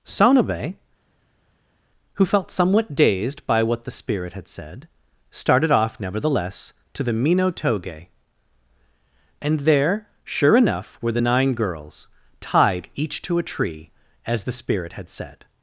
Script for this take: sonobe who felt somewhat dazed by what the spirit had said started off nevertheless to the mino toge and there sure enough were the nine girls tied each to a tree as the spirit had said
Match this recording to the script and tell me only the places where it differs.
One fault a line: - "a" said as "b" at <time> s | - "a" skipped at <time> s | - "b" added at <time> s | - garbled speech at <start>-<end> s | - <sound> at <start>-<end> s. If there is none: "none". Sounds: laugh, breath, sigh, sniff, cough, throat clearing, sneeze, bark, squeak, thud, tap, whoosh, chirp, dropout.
none